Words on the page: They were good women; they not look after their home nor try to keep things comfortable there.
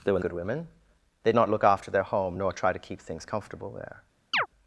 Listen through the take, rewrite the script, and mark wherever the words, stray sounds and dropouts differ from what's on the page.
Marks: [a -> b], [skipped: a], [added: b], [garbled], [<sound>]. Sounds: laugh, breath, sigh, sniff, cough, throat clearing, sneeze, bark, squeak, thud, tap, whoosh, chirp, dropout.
They were good women; they not look after their home nor try to keep things comfortable there. [chirp]